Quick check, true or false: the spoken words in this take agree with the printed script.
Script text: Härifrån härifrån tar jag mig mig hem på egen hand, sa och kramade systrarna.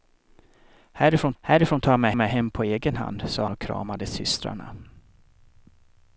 true